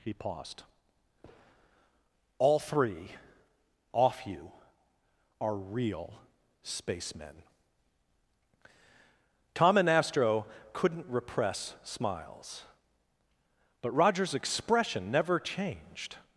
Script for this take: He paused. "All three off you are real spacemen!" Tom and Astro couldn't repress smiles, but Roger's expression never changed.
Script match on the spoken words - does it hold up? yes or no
yes